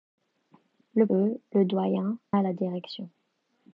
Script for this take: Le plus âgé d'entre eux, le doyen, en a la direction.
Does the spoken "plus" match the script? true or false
false